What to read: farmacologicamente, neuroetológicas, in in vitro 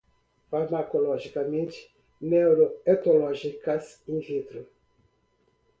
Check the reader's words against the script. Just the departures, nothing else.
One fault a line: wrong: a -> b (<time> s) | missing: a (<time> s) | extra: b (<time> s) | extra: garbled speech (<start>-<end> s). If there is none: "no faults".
missing: in (4.2 s)